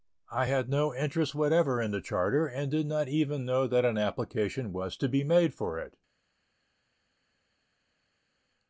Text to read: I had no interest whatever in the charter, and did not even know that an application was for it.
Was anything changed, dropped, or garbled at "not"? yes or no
no